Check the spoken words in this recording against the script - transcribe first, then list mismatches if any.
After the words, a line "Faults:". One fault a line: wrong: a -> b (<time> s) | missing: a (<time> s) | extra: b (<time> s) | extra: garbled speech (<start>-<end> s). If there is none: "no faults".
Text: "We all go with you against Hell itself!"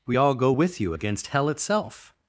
"We all go with you against Hell itself!"
Faults:
no faults